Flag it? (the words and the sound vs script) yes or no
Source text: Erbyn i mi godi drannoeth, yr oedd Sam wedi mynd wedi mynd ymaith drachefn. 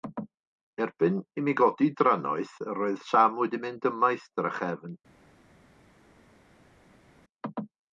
yes